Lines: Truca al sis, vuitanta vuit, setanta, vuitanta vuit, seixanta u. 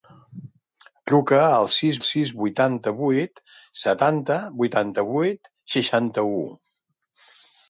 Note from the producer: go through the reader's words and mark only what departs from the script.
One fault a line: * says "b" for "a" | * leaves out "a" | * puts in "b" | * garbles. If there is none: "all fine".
* puts in "sis"